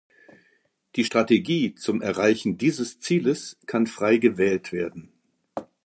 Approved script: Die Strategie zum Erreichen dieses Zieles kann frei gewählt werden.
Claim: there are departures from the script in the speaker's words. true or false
false